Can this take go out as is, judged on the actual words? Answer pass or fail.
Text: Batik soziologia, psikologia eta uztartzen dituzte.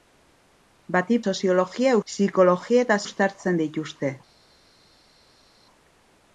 pass